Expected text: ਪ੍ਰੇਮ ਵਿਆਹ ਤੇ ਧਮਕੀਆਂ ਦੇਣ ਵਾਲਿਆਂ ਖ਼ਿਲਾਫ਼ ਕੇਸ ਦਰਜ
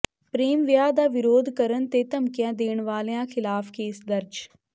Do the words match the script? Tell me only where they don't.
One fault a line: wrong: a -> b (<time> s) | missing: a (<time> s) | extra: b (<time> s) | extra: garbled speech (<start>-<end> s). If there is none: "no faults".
extra: ਦਾ ਵਿਰੋਧ ਕਰਨ (0.9 s)